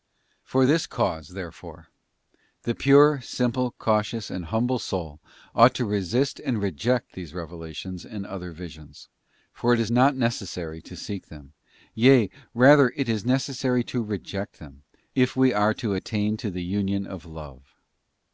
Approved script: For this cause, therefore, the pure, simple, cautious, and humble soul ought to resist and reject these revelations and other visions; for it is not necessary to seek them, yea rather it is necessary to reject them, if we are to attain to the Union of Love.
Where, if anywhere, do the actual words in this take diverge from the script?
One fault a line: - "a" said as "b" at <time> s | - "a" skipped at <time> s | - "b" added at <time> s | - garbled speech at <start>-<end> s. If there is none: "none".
none